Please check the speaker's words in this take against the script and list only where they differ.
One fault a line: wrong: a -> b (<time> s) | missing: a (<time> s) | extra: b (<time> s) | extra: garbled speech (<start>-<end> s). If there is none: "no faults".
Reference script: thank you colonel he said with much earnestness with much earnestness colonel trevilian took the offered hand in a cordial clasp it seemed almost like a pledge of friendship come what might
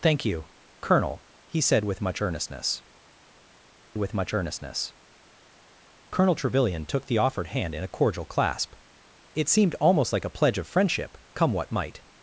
no faults